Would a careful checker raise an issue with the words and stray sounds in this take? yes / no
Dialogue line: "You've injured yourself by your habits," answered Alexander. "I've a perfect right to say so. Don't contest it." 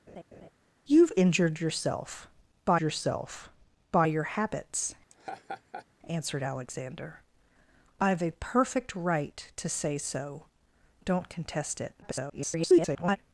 yes